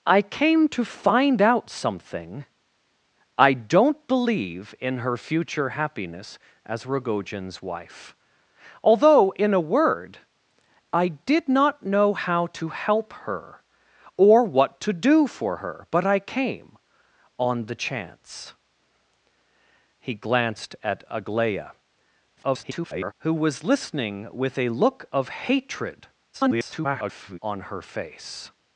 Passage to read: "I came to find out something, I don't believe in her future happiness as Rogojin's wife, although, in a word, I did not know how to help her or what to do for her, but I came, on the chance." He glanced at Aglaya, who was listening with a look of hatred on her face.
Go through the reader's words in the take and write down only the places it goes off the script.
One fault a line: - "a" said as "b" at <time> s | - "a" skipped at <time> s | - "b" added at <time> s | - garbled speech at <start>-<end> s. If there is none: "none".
- garbled speech at 22.4-23.1 s
- garbled speech at 26.3-27.4 s